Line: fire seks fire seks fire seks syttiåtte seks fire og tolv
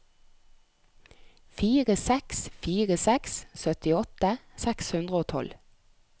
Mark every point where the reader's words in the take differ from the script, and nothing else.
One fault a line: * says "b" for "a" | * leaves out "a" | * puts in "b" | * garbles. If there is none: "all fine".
* leaves out "fire seks"
* says "hundre" for "fire"